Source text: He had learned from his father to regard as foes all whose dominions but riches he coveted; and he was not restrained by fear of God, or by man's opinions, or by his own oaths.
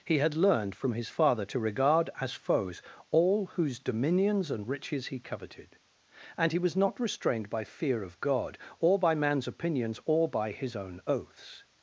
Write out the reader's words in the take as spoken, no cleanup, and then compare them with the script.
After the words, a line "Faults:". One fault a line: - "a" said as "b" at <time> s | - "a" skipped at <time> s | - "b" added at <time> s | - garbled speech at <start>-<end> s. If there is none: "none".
He had learned from his father to regard as foes all whose dominions and riches he coveted; and he was not restrained by fear of God, or by man's opinions, or by his own oaths.
Faults:
- "but" said as "and" at 4.5 s